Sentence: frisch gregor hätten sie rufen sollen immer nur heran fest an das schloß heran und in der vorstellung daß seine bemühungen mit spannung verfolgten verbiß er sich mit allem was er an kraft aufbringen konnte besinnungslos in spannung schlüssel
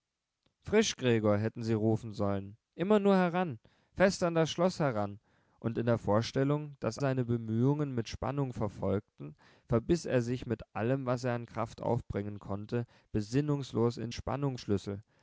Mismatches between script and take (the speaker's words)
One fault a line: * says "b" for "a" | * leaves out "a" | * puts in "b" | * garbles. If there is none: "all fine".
all fine